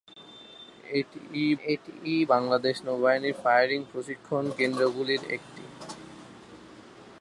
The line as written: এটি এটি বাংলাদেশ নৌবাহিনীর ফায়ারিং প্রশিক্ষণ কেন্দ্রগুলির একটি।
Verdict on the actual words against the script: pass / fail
pass